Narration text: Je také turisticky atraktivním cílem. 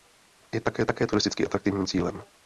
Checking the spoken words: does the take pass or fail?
fail